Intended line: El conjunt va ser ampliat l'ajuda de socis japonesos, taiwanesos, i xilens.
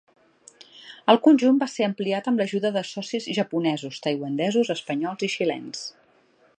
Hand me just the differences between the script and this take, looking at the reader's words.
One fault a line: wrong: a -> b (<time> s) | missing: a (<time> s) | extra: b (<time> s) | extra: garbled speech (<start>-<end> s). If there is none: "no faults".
extra: amb (2.3 s)
extra: espanyols (4.8 s)